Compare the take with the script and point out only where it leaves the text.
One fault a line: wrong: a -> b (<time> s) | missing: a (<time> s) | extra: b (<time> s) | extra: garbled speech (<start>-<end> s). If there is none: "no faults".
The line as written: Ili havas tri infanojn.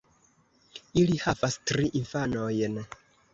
no faults